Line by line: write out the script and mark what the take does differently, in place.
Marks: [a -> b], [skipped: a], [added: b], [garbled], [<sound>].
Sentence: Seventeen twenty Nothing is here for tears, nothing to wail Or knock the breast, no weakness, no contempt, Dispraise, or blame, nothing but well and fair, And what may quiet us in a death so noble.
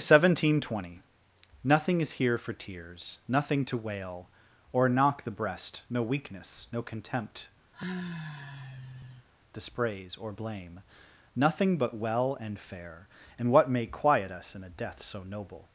Seventeen twenty Nothing is here for tears, nothing to wail Or knock the breast, no weakness, no contempt, [sigh] Dispraise, or blame, nothing but well and fair, And what may quiet us in a death so noble.